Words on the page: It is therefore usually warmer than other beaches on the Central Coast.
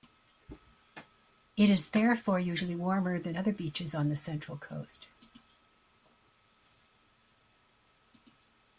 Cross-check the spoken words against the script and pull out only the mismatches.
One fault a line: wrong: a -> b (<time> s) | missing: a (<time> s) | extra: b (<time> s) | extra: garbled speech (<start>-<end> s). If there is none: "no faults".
no faults